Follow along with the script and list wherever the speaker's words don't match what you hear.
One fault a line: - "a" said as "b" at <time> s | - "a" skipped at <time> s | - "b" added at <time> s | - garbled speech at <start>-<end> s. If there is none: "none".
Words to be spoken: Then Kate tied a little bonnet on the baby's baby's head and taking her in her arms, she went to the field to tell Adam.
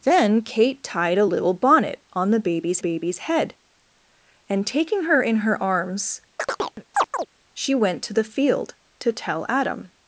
none